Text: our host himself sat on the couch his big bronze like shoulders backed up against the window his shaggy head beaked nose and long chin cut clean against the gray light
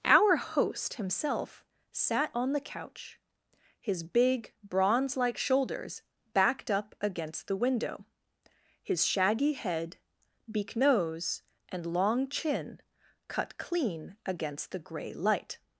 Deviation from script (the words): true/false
true